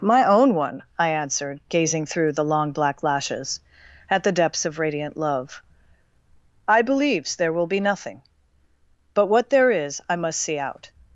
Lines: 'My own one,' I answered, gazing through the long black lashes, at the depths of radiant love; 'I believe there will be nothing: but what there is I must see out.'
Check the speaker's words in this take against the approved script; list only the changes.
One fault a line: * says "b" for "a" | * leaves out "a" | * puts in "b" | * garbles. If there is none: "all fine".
* says "believes" for "believe"